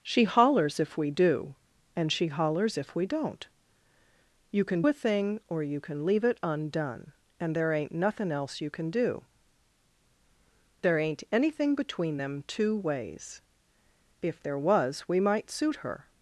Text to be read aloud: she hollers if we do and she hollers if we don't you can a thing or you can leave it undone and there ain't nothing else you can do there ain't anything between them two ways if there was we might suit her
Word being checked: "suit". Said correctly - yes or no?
yes